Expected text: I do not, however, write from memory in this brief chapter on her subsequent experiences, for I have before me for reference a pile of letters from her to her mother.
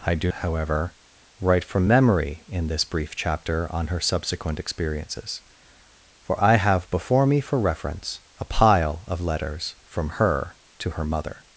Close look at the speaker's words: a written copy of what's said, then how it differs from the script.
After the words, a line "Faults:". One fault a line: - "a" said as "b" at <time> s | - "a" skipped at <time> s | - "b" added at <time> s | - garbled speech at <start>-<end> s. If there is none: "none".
I do however, write from memory in this brief chapter on her subsequent experiences, for I have before me for reference a pile of letters from her to her mother.
Faults:
- "not" skipped at 0.3 s